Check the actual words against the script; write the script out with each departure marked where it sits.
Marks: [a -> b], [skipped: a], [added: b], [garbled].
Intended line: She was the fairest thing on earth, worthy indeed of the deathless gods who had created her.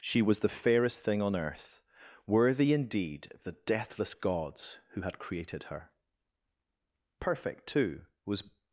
She was the fairest thing on earth, worthy indeed of the deathless gods who had created her. [added: Perfect too was]